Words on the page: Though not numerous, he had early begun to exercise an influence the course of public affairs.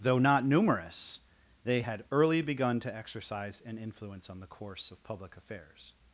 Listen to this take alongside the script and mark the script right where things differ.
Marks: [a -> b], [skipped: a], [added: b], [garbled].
Though not numerous, [he -> they] had early begun to exercise an influence [added: on] the course of public affairs.